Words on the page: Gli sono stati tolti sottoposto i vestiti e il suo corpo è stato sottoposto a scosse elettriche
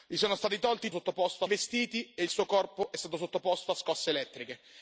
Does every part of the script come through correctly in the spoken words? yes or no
yes